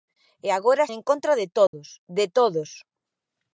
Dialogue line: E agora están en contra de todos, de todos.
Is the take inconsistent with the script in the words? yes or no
yes